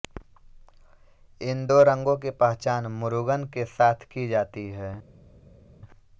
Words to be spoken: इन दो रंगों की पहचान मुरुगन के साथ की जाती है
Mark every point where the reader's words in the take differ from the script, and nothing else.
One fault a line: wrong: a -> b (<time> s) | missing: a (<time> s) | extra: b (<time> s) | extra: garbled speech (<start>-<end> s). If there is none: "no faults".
no faults